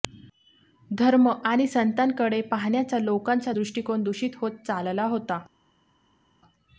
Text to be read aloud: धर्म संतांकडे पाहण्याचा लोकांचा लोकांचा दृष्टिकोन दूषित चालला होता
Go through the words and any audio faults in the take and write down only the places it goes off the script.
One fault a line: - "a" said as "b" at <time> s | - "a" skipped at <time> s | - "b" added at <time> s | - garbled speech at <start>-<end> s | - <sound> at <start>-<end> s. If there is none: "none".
- "आणि" added at 1.3 s
- "लोकांचा" skipped at 3.5 s
- "होत" added at 4.4 s